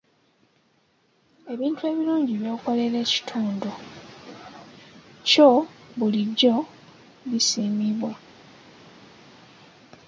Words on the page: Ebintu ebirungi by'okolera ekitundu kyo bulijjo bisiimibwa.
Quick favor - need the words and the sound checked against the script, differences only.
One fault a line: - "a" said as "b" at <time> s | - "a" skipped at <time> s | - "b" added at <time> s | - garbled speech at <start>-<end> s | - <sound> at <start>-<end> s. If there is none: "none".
none